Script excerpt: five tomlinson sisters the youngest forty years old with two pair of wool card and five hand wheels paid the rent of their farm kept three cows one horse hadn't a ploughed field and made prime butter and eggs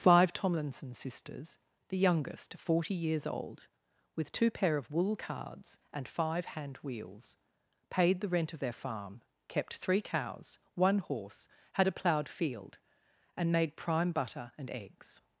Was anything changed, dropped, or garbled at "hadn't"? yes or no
yes